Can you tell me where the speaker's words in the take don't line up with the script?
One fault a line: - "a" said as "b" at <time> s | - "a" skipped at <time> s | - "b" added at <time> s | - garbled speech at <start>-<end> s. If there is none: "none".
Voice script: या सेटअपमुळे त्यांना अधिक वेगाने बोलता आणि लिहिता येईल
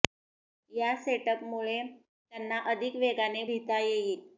- "बोलता आणि" skipped at 3.4 s